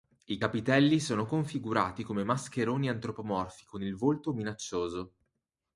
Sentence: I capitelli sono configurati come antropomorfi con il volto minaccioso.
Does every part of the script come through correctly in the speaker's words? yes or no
no